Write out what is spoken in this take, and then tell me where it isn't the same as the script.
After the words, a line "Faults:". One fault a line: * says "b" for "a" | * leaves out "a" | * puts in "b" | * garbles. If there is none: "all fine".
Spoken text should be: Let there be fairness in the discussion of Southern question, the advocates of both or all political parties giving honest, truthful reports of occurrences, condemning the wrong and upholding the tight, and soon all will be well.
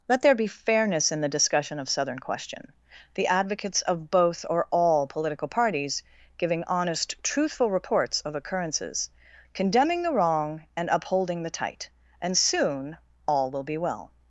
Let there be fairness in the discussion of Southern question, the advocates of both or all political parties giving honest, truthful reports of occurrences, condemning the wrong and upholding the tight, and soon all will be well.
Faults:
all fine